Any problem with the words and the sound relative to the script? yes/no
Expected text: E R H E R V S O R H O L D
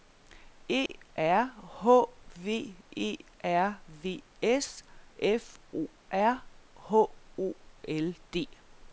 yes